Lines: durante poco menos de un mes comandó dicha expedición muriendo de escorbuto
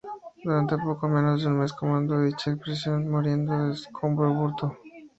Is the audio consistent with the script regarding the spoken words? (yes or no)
yes